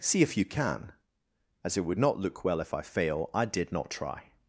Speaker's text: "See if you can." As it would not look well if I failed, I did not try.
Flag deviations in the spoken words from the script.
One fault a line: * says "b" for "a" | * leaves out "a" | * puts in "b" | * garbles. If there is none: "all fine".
* says "fail" for "failed"